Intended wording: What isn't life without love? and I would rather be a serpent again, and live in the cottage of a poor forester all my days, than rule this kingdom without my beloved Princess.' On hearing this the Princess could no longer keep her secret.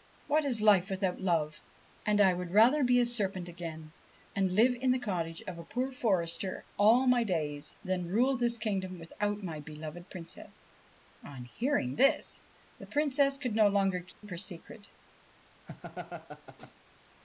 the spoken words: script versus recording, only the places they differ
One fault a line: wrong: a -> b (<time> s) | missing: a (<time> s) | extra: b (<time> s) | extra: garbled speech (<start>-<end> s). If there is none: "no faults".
wrong: isn't -> is (0.5 s)